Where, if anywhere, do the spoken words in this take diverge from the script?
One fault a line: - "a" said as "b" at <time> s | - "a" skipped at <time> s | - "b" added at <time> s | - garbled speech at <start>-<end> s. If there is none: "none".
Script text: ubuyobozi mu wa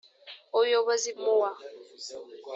none